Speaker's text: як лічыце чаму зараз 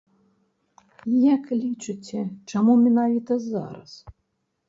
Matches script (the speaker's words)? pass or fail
fail